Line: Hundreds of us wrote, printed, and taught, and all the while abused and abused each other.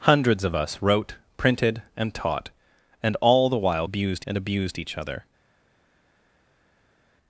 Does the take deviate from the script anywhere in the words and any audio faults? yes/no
no